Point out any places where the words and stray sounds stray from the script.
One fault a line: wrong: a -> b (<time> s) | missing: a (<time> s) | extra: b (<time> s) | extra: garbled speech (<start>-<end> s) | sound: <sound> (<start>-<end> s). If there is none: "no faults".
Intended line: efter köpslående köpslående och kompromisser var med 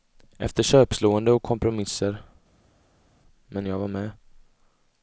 missing: köpslående (1.3 s)
extra: men jag (3.5 s)